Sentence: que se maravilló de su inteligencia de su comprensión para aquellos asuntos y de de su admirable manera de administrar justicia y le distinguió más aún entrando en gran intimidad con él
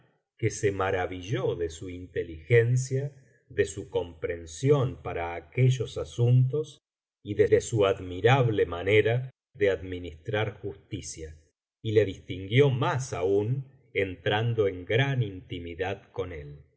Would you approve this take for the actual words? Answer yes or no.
yes